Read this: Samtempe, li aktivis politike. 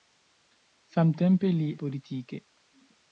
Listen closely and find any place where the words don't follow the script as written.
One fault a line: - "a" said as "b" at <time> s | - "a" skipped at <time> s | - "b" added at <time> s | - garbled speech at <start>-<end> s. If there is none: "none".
- "aktivis" skipped at 1.7 s